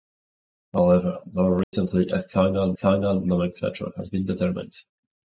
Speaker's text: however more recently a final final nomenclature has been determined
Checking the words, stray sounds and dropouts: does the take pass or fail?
fail